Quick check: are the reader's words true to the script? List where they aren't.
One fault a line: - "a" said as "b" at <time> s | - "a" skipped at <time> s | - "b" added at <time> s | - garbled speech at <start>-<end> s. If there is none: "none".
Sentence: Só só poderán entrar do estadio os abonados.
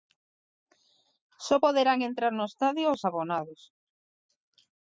- "só" skipped at 1.6 s
- "do" said as "no" at 2.3 s